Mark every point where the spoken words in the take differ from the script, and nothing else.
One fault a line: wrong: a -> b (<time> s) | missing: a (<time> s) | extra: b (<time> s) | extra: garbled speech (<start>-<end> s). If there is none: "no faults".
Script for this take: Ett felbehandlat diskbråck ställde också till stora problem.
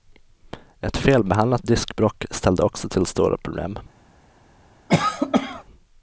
no faults